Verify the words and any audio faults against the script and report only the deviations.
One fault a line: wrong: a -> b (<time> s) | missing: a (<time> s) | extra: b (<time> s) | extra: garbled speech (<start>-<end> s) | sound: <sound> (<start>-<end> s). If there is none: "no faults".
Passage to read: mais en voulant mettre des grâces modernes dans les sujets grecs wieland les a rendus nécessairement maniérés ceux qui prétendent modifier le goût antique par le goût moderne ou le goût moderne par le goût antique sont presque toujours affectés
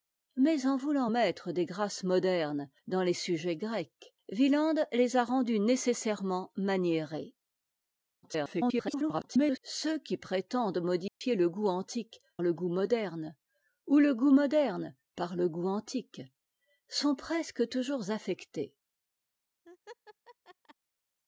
extra: garbled speech (8.2-9.6 s)
sound: dropout (11.1-11.2 s)
missing: par (12.2 s)
sound: laugh (19.6-20.7 s)